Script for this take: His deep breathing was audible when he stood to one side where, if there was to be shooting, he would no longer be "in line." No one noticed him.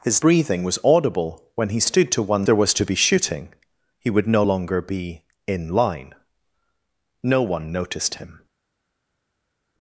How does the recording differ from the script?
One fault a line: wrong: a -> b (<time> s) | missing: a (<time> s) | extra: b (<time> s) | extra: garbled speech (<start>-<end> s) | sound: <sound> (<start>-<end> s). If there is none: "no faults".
missing: deep (0.2 s)
missing: side where if (2.5 s)